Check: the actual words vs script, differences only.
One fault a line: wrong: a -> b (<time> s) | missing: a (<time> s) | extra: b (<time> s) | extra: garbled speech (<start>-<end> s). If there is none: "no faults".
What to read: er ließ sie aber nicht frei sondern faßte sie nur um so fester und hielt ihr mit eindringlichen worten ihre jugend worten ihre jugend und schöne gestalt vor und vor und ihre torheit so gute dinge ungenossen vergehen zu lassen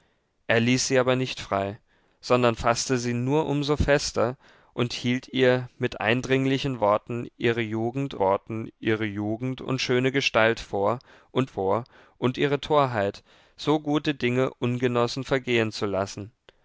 no faults